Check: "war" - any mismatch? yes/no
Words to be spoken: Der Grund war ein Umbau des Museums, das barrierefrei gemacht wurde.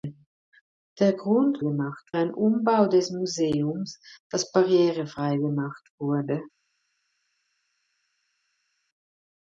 yes